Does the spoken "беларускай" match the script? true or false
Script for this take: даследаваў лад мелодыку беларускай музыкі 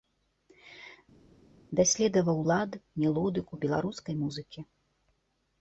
true